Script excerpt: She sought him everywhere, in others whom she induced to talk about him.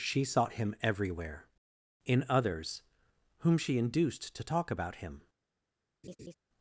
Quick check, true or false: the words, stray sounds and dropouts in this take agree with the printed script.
false